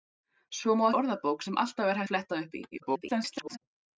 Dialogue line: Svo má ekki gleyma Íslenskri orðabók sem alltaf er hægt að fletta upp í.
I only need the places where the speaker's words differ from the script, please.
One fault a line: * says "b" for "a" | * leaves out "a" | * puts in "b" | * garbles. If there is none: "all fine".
* leaves out "ekki gleyma Íslenskri"
* leaves out "hægt"
* garbles